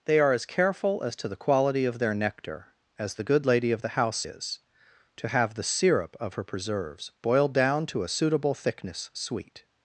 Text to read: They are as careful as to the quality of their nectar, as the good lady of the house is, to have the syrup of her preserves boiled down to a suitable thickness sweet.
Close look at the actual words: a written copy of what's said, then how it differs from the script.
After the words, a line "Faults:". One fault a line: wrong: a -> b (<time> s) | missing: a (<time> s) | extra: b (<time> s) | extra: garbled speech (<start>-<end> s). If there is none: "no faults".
They are as careful as to the quality of their nectar, as the good lady of the house is, to have the syrup of her preserves boiled down to a suitable thickness sweet.
Faults:
no faults